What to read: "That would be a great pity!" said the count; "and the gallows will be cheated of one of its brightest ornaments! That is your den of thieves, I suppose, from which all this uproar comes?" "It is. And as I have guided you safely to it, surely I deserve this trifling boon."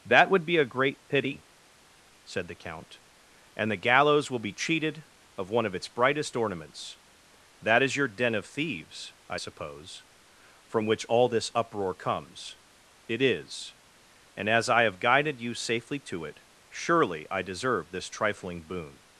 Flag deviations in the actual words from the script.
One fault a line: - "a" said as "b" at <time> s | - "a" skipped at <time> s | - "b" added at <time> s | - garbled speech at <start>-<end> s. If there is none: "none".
none